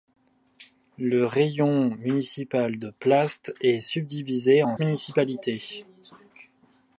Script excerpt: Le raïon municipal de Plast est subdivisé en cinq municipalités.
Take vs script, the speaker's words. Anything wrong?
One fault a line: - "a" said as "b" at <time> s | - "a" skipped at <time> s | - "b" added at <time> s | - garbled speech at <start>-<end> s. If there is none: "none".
- "cinq" skipped at 4.8 s